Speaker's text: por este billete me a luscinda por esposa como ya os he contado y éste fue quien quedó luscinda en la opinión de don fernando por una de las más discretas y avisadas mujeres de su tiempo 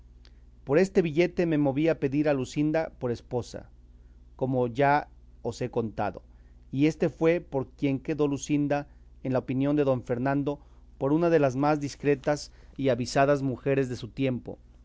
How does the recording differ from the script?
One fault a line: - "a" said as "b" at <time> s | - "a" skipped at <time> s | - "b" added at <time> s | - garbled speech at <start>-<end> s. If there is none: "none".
- "moví" added at 1.6 s
- "pedir a" added at 2.0 s
- "por" added at 7.4 s